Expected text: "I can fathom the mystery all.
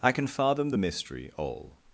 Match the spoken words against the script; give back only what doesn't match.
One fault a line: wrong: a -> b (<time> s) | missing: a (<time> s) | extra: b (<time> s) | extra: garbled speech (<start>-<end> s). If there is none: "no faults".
no faults